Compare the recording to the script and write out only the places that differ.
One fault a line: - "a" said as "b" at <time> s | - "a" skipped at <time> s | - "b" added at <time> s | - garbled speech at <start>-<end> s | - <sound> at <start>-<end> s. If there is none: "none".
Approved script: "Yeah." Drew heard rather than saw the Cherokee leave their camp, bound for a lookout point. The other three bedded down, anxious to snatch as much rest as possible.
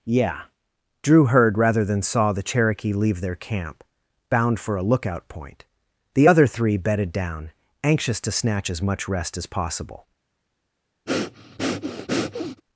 - breath at 11.1-12.6 s